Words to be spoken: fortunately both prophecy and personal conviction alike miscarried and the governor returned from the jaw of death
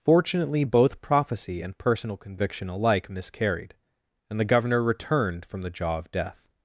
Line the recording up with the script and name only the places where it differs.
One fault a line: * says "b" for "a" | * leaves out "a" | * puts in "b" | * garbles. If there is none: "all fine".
all fine